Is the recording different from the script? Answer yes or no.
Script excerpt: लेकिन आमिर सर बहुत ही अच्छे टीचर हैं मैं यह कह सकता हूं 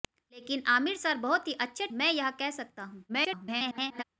yes